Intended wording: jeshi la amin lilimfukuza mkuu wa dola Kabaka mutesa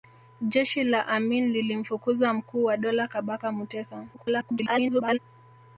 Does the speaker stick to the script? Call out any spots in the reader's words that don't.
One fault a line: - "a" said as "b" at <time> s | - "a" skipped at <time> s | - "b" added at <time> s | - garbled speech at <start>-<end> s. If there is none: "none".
- garbled speech at 4.1-5.2 s